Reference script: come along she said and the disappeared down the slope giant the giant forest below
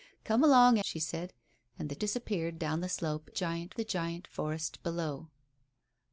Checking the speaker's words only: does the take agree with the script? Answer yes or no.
yes